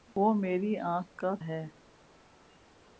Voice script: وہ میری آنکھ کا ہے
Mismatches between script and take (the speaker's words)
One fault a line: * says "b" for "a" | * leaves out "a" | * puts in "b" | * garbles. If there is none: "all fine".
all fine